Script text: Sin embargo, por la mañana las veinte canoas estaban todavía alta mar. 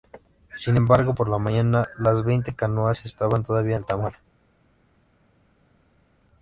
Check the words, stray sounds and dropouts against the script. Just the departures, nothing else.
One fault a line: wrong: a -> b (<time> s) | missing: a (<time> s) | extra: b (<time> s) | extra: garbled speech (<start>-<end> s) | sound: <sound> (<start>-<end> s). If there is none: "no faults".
no faults